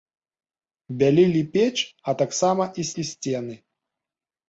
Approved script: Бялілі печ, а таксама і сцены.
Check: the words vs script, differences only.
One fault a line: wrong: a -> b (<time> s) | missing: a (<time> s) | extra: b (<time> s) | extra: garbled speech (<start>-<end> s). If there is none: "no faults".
extra: і (3.0 s)